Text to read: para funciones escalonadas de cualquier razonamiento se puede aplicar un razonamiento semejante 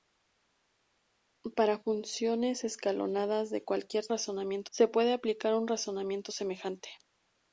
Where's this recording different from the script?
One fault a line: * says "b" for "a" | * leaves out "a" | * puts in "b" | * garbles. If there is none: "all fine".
all fine